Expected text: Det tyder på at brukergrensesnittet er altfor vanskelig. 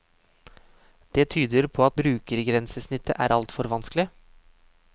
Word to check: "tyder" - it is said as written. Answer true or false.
true